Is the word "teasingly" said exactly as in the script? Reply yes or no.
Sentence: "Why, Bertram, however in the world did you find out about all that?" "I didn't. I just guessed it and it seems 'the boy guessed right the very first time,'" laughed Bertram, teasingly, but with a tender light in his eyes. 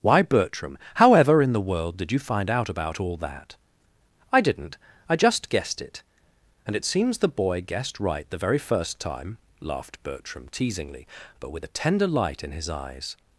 yes